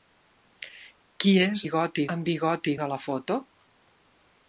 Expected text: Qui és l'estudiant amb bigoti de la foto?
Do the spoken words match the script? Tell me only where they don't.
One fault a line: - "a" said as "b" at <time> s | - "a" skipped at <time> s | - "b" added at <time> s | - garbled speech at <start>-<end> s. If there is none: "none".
- "l'estudiant" said as "bigoti" at 1.6 s